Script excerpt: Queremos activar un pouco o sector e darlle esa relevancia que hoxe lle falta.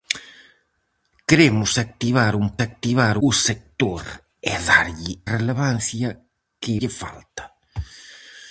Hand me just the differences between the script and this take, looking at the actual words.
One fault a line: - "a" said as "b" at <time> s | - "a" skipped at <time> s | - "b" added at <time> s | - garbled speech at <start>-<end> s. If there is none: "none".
- "pouco" said as "activar" at 2.7 s
- "esa" skipped at 5.1 s
- "hoxe" skipped at 6.7 s